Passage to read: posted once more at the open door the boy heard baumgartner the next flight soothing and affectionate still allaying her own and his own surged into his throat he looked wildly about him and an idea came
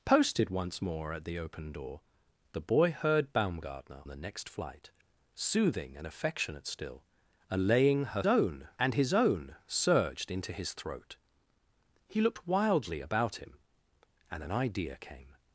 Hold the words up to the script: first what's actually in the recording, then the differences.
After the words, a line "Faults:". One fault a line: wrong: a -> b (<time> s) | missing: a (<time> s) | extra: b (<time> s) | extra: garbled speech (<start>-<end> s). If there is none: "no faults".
posted once more at the open door the boy heard baumgartner the next flight soothing and affectionate still allaying her own and his own surged into his throat he looked wildly about him and an idea came
Faults:
no faults